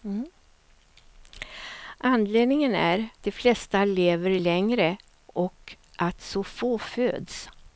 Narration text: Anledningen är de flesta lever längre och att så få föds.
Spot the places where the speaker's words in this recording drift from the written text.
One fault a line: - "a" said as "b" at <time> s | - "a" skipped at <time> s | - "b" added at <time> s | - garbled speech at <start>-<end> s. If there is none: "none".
none